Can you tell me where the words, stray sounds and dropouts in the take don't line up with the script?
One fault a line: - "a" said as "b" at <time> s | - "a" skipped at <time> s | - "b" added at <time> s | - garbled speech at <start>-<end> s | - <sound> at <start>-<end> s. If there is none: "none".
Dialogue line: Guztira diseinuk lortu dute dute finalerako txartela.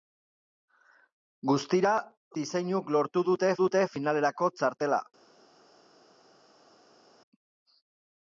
none